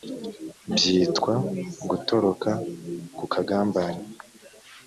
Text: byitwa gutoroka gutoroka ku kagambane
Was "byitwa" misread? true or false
false